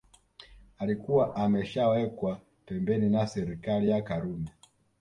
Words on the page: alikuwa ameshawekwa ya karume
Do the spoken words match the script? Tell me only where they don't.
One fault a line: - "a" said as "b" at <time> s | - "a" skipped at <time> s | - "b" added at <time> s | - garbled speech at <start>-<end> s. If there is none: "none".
- "pembeni na serikali" added at 2.6 s